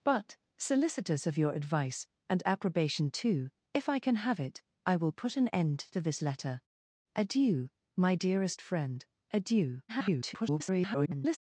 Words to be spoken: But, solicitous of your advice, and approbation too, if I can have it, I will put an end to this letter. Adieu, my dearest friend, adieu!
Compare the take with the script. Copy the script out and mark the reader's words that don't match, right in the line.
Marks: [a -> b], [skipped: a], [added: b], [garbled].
But, solicitous of your advice, and approbation too, if I can have it, I will put an end to this letter. Adieu, my dearest friend, adieu! [garbled]